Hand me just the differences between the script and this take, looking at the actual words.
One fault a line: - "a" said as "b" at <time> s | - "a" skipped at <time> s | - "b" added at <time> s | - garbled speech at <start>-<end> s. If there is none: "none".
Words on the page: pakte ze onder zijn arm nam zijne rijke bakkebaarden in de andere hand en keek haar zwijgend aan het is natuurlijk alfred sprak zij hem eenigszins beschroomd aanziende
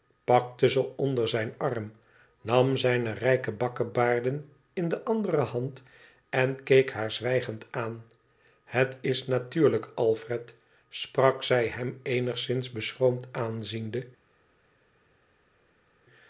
none